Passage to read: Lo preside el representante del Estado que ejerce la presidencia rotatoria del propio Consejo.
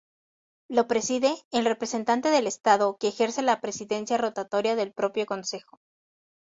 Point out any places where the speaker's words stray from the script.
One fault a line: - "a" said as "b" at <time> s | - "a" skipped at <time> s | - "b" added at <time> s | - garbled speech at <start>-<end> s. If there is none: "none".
none